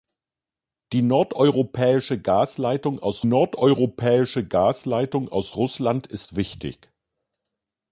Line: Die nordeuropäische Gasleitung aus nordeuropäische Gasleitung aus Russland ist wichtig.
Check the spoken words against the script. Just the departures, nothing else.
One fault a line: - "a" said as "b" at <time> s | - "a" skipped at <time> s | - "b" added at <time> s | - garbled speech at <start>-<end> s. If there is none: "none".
none